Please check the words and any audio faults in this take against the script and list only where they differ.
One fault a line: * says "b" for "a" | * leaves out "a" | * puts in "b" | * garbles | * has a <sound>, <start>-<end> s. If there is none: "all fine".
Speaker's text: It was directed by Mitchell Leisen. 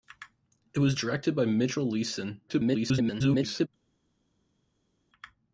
* garbles